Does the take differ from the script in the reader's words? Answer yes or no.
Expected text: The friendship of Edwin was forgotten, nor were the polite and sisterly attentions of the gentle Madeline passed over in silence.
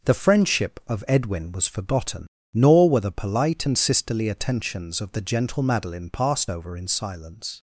no